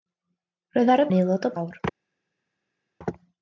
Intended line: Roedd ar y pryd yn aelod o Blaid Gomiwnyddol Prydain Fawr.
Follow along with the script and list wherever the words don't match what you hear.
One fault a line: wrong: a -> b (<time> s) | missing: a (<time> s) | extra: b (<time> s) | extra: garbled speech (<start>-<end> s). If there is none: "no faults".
missing: pryd (1.1 s)
missing: Blaid Gomiwnyddol Prydain (1.5 s)